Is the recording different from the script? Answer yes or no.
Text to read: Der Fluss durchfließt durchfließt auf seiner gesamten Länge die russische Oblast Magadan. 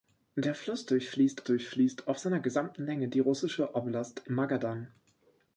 no